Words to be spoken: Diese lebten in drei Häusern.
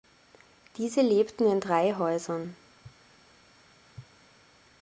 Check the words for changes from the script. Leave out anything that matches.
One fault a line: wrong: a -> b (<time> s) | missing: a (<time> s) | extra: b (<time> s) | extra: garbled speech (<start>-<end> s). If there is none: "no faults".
no faults